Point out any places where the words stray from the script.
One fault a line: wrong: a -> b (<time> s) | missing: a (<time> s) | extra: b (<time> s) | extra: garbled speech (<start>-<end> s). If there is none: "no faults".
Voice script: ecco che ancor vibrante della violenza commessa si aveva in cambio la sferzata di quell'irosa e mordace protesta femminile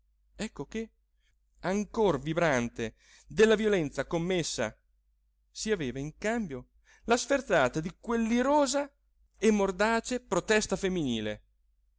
no faults